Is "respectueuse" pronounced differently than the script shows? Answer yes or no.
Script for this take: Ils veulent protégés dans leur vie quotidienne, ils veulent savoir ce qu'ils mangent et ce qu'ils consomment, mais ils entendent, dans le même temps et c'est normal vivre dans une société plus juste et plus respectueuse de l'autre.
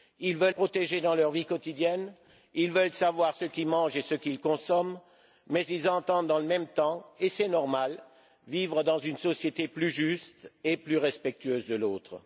no